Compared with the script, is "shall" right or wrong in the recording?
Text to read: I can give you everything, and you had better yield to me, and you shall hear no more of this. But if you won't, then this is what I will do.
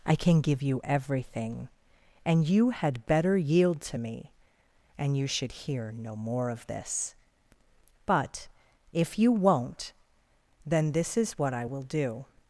wrong